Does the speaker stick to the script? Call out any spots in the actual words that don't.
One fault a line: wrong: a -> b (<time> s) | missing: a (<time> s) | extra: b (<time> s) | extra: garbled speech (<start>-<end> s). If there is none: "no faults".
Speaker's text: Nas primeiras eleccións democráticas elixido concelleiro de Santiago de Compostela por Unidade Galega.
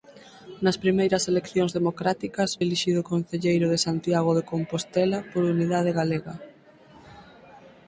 no faults